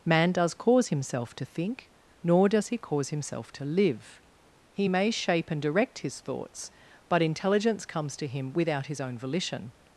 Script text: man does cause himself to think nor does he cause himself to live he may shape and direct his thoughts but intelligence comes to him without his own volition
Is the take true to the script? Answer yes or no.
yes